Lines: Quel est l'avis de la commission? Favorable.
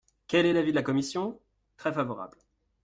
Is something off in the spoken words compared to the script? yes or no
yes